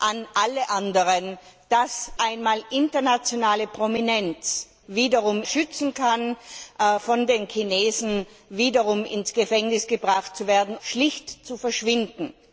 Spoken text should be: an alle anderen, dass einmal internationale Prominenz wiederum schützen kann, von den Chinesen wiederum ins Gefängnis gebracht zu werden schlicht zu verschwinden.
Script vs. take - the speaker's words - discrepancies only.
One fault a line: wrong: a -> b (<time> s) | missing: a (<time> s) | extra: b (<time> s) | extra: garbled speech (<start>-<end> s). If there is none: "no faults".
no faults